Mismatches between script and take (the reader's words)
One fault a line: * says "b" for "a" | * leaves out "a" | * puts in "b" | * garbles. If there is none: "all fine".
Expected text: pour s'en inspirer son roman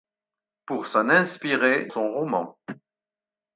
all fine